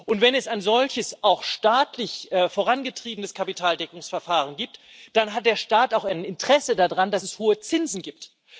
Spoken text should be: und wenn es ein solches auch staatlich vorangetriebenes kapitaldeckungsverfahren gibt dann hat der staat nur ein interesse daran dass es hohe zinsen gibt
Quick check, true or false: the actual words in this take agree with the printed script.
false